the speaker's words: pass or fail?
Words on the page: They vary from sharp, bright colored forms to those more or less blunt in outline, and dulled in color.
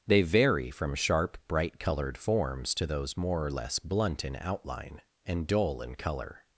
fail